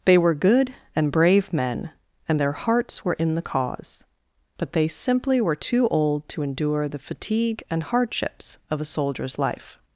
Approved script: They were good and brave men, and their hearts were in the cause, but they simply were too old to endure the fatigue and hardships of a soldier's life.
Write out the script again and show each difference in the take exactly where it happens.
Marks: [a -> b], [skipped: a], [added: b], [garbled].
They were good and brave men, and their hearts were in the cause, but they simply were too old to endure the fatigue and hardships of a soldier's life.